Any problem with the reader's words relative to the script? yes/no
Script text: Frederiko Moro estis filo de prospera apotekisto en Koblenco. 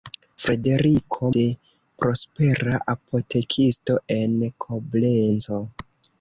yes